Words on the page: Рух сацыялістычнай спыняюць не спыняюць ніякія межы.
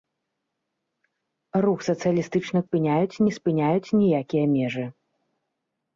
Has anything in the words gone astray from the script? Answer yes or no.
no